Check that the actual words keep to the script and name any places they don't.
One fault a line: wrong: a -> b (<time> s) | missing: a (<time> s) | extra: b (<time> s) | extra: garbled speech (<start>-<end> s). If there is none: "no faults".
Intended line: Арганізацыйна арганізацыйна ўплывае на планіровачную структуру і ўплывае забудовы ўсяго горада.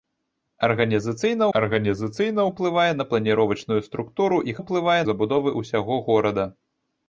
no faults